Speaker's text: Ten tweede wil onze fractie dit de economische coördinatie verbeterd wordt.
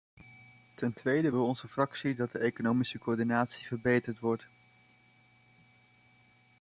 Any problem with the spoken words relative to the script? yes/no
yes